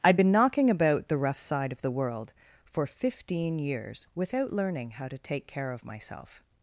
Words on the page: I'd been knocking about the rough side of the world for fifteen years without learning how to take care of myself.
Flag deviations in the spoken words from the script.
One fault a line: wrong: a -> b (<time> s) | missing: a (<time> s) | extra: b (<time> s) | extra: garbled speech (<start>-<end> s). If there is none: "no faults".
no faults